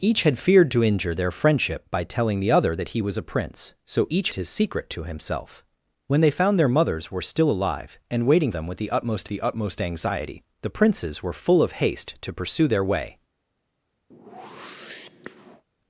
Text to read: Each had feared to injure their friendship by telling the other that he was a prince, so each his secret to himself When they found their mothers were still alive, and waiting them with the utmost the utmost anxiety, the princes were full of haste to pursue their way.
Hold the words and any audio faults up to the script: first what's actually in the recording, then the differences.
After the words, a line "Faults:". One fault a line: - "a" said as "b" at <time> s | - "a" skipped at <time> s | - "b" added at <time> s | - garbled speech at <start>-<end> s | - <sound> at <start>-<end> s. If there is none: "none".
Each had feared to injure their friendship by telling the other that he was a prince, so each his secret to himself When they found their mothers were still alive, and waiting them with the utmost the utmost anxiety, the princes were full of haste to pursue their way.
Faults:
- whoosh at 14.1-15.6 s